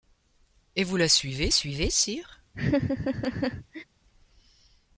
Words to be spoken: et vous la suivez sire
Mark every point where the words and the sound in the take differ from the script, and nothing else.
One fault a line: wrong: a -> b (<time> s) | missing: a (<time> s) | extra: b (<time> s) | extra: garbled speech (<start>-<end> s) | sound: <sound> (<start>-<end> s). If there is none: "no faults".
extra: suivez (1.5 s)
sound: laugh (2.5-3.8 s)